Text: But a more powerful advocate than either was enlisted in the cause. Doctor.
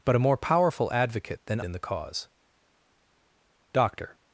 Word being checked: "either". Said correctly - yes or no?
no